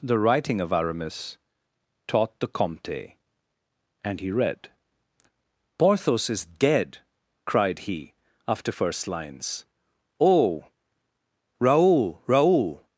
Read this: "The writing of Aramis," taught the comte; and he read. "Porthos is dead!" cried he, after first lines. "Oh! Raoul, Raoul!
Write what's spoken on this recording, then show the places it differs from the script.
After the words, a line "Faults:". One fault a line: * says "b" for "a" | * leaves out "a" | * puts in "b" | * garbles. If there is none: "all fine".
"The writing of Aramis," taught the comte; and he read. "Porthos is dead!" cried he, after first lines. "Oh! Raoul, Raoul!
Faults:
all fine